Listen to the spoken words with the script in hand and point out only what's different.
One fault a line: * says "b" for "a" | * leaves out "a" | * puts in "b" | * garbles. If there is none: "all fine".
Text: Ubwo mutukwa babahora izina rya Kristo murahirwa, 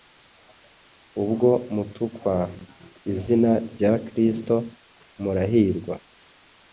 * leaves out "babahora"